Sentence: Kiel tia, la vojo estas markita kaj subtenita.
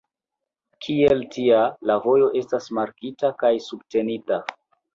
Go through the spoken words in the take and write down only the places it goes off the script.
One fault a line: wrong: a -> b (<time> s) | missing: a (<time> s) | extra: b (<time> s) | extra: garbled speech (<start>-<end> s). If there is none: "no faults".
no faults